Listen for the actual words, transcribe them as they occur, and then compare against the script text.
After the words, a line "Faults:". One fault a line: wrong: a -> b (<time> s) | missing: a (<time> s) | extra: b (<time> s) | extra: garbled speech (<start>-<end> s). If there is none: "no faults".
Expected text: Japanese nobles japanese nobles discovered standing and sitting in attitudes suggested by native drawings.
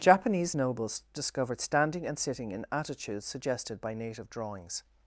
Japanese nobles discovered standing and sitting in attitudes suggested by native drawings.
Faults:
missing: japanese nobles (1.0 s)